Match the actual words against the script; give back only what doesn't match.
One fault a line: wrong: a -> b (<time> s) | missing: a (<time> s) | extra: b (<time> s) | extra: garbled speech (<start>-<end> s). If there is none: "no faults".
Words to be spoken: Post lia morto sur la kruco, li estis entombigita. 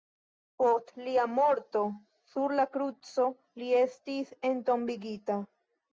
no faults